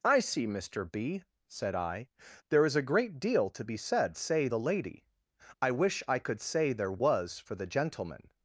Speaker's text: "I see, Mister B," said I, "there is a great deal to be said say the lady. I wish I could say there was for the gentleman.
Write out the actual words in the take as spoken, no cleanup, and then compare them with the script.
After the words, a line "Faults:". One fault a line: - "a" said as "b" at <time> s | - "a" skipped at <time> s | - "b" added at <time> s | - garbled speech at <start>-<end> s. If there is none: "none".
"I see, Mister B," said I, "there is a great deal to be said say the lady. I wish I could say there was for the gentleman.
Faults:
none